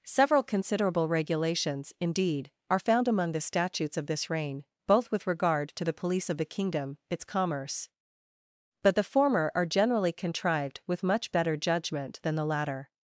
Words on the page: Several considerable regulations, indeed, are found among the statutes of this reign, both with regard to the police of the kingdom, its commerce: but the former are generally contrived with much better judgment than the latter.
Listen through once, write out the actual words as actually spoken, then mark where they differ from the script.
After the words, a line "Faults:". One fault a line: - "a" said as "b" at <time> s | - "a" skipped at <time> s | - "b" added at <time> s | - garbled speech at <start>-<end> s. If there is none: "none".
Several considerable regulations, indeed, are found among the statutes of this reign, both with regard to the police of the kingdom, its commerce: but the former are generally contrived with much better judgment than the latter.
Faults:
none